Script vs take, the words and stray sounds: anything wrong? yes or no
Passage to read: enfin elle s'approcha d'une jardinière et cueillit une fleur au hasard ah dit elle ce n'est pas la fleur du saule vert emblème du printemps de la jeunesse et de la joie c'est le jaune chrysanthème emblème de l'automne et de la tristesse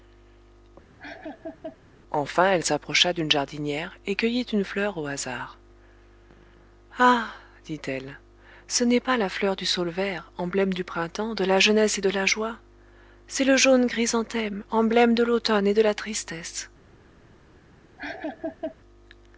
yes